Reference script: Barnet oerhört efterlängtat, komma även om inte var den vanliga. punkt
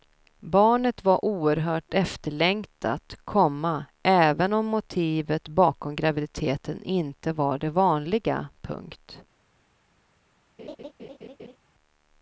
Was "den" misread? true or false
true